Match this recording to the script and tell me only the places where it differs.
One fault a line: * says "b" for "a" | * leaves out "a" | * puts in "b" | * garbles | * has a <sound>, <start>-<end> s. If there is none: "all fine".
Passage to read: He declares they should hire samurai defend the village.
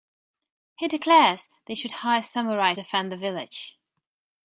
all fine